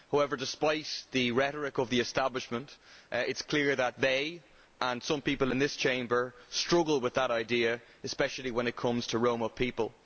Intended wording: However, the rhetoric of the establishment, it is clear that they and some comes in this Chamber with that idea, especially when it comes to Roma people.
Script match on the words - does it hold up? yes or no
no